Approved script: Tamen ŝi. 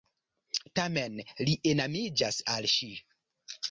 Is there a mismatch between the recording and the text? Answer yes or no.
yes